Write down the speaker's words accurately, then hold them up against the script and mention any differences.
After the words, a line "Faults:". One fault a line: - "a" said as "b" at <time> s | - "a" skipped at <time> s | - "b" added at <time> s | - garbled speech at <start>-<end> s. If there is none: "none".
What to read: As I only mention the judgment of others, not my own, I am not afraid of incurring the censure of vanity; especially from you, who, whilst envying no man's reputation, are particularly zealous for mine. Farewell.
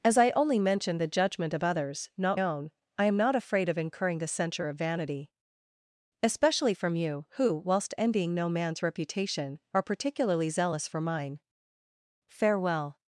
As I only mention the judgment of others, not own, I am not afraid of incurring the censure of vanity; especially from you, who, whilst envying no man's reputation, are particularly zealous for mine. Farewell.
Faults:
- "my" skipped at 2.4 s